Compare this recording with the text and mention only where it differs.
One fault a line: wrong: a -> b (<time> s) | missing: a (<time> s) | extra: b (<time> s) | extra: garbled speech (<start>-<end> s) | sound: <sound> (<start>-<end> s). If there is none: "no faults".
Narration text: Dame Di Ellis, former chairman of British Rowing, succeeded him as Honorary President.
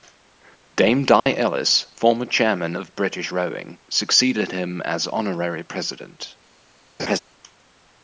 sound: dropout (1.2-1.3 s)
sound: laugh (7.0-7.2 s)